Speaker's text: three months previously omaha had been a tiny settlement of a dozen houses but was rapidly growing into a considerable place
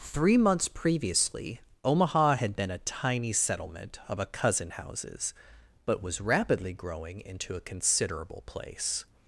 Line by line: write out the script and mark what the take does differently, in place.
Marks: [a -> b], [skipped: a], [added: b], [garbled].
three months previously omaha had been a tiny settlement of a [dozen -> cousin] houses but was rapidly growing into a considerable place